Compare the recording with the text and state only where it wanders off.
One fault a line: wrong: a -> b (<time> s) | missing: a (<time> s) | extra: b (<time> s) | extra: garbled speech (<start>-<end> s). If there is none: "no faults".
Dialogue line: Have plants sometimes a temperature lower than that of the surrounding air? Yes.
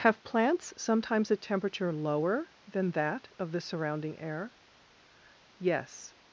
no faults